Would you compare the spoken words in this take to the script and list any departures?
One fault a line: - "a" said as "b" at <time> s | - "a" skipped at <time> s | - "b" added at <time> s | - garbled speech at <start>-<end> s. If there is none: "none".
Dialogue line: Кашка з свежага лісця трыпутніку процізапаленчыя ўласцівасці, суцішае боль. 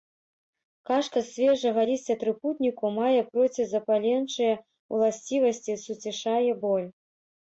- "мае" added at 3.0 s